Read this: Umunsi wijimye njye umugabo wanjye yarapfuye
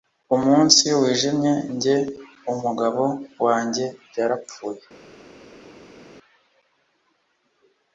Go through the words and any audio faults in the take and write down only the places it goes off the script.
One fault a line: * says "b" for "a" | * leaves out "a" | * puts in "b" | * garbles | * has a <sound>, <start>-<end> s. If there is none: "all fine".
all fine